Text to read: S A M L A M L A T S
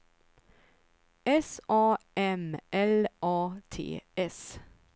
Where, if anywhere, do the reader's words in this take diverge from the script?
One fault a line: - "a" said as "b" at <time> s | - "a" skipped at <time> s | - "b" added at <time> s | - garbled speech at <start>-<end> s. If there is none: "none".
- "M L A" skipped at 3.6 s